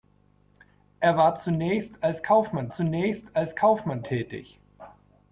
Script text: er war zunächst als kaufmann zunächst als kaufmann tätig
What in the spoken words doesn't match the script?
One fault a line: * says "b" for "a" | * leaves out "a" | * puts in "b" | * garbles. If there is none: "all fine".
all fine